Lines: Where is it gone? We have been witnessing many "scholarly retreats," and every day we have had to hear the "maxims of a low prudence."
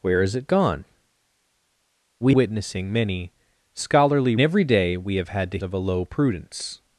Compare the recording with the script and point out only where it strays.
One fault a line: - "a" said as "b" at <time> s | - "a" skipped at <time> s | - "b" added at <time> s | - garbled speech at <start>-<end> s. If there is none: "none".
- "have been" skipped at 2.4 s
- "retreats and" skipped at 4.4 s
- "hear the maxims" skipped at 5.6 s